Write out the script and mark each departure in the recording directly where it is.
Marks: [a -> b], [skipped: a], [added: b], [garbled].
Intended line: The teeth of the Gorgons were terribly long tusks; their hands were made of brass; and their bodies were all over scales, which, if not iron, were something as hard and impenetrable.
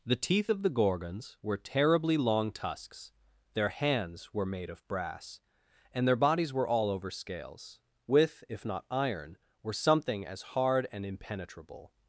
The teeth of the Gorgons were terribly long tusks; their hands were made of brass; and their bodies were all over scales, [which, -> with] if not iron, were something as hard and impenetrable.